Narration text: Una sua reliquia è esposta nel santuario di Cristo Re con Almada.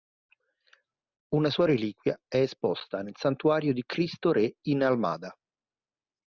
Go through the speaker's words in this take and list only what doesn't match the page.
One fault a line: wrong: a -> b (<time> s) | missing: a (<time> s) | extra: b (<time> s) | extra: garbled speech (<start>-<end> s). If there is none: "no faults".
wrong: con -> in (4.7 s)